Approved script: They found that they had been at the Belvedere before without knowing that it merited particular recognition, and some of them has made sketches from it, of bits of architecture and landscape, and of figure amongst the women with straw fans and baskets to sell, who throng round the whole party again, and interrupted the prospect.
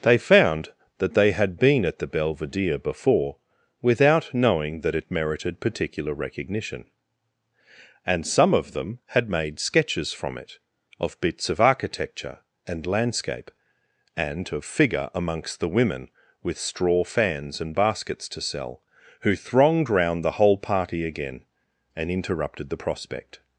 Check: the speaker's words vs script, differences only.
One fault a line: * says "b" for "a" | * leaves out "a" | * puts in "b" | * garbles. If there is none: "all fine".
* says "had" for "has"
* says "thronged" for "throng"